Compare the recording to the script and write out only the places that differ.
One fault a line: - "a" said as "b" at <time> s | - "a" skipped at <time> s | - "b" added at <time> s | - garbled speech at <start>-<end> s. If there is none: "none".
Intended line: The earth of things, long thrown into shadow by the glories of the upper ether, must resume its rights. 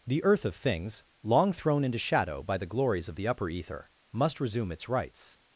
none